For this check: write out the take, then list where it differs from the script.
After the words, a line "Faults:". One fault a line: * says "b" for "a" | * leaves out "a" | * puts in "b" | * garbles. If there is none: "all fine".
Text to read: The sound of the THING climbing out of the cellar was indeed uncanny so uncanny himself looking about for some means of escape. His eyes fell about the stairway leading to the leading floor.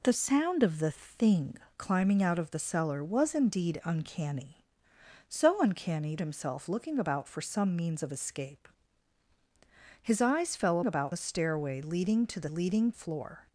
The sound of the THING climbing out of the cellar was indeed uncanny so uncanny himself looking about for some means of escape. His eyes fell about the stairway leading to the leading floor.
Faults:
all fine